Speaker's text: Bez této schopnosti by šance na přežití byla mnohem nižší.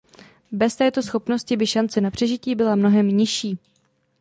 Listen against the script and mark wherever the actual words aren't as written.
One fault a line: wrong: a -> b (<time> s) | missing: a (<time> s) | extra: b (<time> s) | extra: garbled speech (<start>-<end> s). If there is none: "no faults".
no faults